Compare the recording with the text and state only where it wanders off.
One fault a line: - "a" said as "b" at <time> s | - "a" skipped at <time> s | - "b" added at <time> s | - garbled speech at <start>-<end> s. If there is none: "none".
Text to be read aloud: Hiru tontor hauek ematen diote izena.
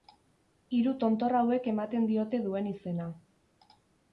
- "duen" added at 2.5 s